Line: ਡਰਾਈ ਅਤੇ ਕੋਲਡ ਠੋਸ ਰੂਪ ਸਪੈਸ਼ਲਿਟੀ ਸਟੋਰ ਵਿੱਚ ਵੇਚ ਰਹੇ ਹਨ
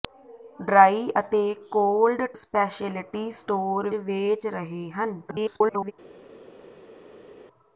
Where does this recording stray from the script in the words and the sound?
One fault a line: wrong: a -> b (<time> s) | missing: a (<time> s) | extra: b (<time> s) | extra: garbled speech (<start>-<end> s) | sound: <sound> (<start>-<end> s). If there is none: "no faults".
missing: ਠੋਸ ਰੂਪ (2.2 s)
missing: ਵਿੱਚ (3.9 s)
extra: garbled speech (5.3-5.9 s)